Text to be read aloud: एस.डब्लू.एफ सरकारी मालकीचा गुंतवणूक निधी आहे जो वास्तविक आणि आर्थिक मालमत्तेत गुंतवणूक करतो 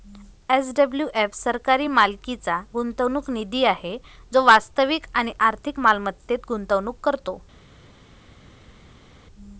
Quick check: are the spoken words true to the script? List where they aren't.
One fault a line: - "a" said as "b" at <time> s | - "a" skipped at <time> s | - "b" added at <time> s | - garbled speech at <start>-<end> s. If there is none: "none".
none